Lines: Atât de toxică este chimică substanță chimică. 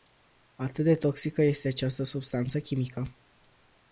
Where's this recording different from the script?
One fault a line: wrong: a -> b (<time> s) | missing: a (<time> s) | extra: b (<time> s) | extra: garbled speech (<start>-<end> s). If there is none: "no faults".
wrong: chimică -> această (1.7 s)